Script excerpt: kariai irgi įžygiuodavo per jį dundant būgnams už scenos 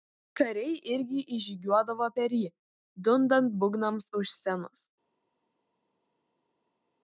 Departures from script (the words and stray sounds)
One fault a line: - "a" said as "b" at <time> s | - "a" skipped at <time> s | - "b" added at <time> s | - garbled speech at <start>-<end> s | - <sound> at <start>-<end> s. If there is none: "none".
none